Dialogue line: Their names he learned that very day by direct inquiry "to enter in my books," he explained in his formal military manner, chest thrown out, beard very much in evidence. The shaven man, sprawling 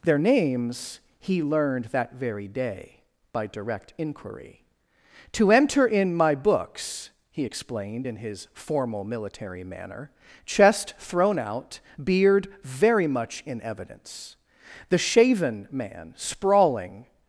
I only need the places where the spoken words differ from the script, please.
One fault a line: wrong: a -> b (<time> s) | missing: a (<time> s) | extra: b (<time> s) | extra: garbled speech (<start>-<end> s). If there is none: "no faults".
no faults